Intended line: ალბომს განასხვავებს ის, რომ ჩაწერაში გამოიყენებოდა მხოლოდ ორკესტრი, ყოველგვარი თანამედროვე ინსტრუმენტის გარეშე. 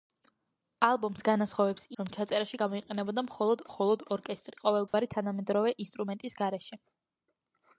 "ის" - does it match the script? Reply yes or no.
no